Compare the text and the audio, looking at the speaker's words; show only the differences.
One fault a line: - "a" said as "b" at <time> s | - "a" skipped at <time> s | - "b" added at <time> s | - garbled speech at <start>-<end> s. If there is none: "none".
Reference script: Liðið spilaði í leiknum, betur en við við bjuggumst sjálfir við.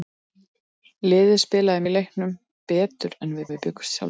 none